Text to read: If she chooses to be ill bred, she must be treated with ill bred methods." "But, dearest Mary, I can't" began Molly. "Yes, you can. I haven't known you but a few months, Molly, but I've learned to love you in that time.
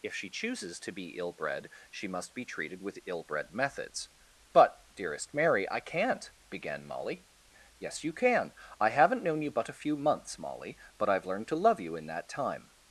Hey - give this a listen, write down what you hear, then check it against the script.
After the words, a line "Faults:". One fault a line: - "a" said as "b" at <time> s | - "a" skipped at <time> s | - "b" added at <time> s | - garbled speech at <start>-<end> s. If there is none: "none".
If she chooses to be ill bred, she must be treated with ill bred methods." "But, dearest Mary, I can't" began Molly. "Yes, you can. I haven't known you but a few months, Molly, but I've learned to love you in that time.
Faults:
none